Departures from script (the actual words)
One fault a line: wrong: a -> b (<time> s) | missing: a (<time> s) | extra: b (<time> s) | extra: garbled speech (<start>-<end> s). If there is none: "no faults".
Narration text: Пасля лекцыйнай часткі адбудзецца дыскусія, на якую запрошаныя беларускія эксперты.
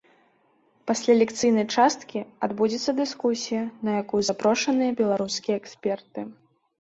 no faults